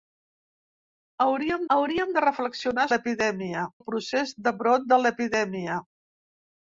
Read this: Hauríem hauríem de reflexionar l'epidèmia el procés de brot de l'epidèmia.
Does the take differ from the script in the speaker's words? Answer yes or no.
no